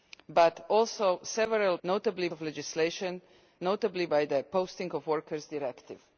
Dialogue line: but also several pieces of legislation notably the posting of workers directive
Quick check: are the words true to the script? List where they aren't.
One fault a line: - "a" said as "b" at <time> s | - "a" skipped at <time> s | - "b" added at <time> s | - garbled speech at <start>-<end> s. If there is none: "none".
- "pieces" said as "notably" at 1.8 s